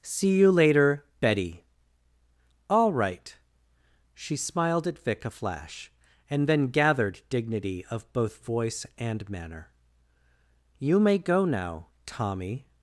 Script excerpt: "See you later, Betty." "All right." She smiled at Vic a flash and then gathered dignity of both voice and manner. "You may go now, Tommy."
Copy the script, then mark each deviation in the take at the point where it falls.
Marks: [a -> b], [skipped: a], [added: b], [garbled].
"See you later, Betty." "All right." She smiled at Vic a flash and then gathered dignity of both voice and manner. "You may go now, Tommy."